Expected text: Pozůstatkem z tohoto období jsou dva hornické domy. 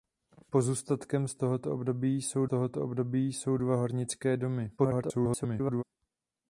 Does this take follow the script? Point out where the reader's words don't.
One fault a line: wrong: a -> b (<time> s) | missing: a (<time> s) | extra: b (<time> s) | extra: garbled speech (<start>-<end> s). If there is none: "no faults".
extra: tohoto období jsou (2.4 s)
extra: garbled speech (4.8-5.8 s)